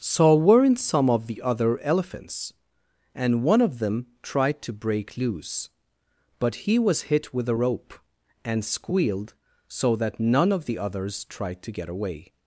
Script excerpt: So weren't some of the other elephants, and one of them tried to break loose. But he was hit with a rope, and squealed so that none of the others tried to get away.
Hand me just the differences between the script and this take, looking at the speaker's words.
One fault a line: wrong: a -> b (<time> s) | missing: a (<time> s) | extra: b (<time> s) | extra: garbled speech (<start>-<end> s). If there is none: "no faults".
no faults